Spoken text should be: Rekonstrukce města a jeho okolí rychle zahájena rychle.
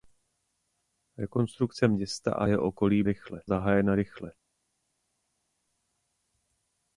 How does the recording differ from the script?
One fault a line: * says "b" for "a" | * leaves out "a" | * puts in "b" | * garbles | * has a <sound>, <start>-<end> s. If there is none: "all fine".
all fine